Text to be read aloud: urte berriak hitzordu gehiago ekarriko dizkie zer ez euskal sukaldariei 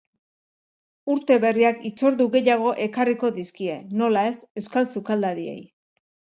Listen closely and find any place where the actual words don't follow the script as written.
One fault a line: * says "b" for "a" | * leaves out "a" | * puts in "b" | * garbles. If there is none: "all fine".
* says "nola" for "zer"